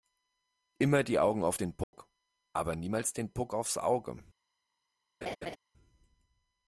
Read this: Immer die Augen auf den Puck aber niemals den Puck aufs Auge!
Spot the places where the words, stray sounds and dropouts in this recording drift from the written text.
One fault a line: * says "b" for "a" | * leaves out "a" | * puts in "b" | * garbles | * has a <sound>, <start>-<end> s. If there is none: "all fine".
* has a dropout, 1.8-1.9 s
* has a laugh, 5.2-5.6 s